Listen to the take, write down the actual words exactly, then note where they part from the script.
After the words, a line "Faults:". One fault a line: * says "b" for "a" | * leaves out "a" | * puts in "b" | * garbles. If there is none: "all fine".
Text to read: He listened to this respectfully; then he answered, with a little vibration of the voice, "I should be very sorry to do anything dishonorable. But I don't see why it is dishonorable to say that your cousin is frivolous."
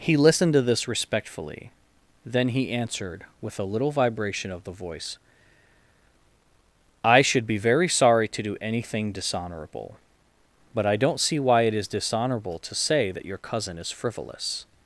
He listened to this respectfully; then he answered, with a little vibration of the voice, "I should be very sorry to do anything dishonorable. But I don't see why it is dishonorable to say that your cousin is frivolous."
Faults:
all fine